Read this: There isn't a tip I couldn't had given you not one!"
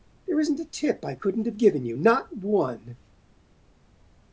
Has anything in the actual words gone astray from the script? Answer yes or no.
yes